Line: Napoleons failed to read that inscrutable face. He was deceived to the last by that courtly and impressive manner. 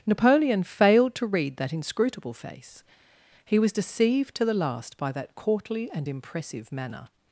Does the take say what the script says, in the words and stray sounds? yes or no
no